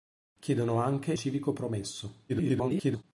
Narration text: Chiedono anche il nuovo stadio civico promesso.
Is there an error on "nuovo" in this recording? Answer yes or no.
yes